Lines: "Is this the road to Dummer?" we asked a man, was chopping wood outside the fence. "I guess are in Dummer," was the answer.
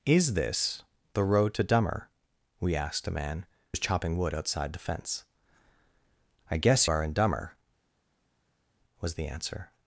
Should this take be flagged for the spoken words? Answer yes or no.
no